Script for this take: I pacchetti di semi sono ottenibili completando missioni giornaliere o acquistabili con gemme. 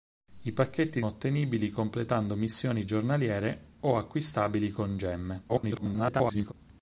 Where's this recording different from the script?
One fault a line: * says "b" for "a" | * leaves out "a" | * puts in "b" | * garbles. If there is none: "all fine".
* leaves out "di semi sono"
* garbles